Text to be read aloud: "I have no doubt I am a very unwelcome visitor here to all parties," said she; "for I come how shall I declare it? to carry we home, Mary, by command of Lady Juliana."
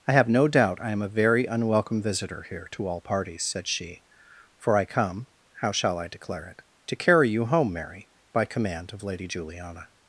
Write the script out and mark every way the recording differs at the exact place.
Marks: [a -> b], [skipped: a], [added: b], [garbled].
"I have no doubt I am a very unwelcome visitor here to all parties," said she; "for I come how shall I declare it? to carry [we -> you] home, Mary, by command of Lady Juliana."